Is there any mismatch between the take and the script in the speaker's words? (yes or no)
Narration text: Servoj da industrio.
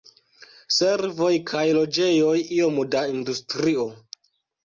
yes